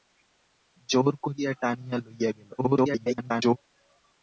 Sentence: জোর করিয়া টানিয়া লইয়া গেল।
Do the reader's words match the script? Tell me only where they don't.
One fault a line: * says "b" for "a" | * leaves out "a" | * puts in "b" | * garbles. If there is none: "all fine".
* garbles